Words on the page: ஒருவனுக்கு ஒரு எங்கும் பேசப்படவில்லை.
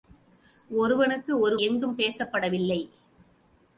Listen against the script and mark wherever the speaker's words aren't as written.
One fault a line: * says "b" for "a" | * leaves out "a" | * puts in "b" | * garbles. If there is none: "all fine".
all fine